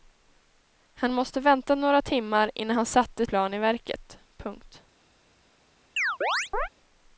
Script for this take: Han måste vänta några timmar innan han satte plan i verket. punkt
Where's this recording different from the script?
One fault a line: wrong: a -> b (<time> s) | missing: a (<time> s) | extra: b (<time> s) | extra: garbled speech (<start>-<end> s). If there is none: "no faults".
no faults